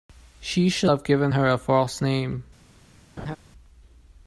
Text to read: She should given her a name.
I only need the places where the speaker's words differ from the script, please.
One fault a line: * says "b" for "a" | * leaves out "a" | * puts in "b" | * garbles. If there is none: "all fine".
* puts in "have"
* puts in "false"